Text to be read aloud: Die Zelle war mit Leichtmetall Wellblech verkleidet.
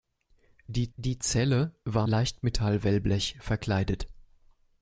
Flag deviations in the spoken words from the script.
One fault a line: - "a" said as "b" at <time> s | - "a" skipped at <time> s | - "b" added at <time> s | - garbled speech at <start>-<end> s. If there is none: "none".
- "die" added at 0.9 s
- "mit" skipped at 2.1 s